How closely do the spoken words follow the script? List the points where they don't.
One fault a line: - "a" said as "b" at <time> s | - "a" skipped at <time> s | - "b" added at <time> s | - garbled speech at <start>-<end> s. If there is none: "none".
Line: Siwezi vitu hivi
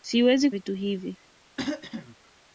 none